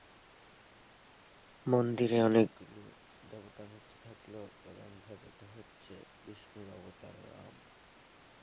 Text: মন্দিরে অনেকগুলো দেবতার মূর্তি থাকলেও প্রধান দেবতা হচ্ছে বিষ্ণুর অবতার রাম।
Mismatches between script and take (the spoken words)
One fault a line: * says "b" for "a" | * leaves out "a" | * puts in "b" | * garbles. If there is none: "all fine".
all fine